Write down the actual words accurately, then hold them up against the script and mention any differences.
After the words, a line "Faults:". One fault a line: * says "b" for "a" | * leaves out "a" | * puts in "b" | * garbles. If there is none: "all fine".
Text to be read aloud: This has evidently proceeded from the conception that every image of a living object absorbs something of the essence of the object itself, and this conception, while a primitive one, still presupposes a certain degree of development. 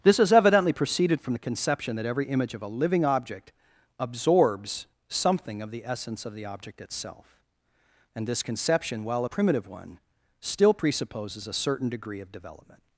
This has evidently proceeded from the conception that every image of a living object absorbs something of the essence of the object itself, and this conception, while a primitive one, still presupposes a certain degree of development.
Faults:
all fine